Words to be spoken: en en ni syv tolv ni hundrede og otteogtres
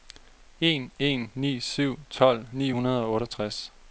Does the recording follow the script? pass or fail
pass